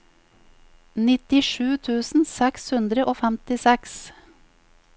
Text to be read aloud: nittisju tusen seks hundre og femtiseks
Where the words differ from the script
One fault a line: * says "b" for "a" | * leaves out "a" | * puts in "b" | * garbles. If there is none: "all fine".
all fine